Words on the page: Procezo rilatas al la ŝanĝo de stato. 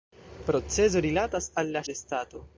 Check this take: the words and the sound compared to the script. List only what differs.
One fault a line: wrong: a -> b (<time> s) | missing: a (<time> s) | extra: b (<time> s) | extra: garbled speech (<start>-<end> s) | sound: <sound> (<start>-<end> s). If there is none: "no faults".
missing: ŝanĝo (1.9 s)